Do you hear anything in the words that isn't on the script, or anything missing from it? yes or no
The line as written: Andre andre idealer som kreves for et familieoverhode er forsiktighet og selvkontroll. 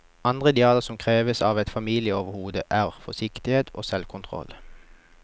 yes